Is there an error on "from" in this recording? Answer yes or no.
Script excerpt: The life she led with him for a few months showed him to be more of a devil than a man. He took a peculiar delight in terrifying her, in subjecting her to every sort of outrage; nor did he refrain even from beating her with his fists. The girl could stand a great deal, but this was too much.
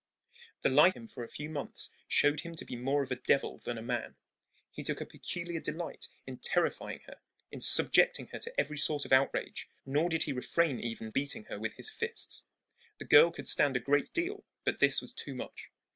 yes